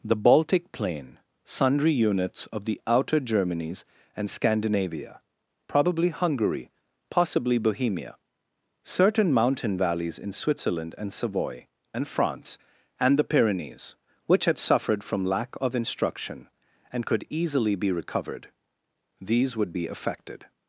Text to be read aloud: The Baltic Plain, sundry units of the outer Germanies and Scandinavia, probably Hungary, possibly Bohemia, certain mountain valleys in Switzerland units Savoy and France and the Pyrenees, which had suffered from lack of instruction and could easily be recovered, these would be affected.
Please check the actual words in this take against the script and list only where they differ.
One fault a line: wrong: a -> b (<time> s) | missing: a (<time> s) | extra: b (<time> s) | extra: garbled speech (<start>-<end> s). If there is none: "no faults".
wrong: units -> and (11.0 s)